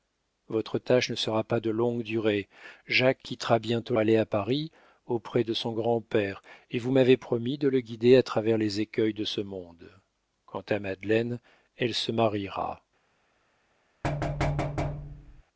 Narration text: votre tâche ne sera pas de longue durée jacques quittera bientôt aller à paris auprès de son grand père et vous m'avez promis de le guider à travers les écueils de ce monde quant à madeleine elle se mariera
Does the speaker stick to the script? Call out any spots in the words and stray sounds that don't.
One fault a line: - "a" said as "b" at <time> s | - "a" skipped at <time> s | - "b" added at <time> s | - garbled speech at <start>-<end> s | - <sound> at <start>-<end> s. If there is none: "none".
- thud at 14.0-15.4 s